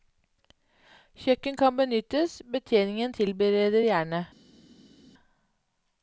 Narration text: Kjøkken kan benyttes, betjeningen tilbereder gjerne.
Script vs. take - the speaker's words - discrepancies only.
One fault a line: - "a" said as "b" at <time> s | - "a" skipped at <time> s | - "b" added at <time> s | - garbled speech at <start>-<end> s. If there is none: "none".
none